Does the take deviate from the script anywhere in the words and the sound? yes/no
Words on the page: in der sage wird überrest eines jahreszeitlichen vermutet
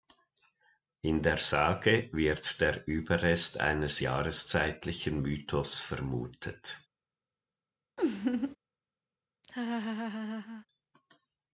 yes